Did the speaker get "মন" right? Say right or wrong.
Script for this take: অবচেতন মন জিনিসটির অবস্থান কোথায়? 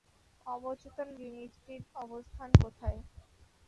wrong